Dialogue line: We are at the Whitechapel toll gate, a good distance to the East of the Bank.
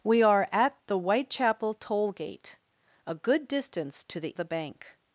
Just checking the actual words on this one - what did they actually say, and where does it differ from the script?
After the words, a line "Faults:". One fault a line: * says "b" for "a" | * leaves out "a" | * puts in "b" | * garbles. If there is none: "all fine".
We are at the Whitechapel toll gate, a good distance to the The Bank.
Faults:
* leaves out "East of"